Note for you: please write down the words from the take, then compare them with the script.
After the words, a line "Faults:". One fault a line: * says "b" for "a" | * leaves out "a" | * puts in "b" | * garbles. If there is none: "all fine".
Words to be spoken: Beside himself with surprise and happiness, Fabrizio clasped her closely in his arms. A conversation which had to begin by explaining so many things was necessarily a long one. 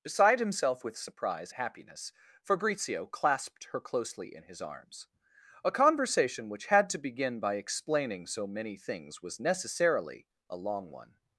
Beside himself with surprise happiness, Fabrizio clasped her closely in his arms. A conversation which had to begin by explaining so many things was necessarily a long one.
Faults:
* leaves out "and"